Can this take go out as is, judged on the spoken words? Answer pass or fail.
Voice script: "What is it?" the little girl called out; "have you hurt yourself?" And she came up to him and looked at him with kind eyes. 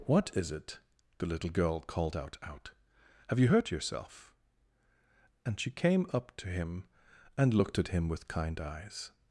fail